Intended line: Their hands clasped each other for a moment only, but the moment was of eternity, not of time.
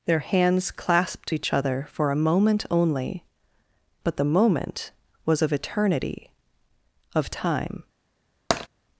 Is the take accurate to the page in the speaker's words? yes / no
no